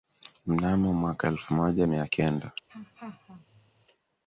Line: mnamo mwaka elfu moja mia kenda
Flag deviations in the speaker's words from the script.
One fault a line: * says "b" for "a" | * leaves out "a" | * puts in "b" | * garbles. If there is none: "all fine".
all fine